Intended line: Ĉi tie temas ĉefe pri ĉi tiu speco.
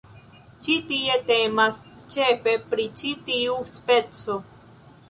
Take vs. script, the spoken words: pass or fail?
pass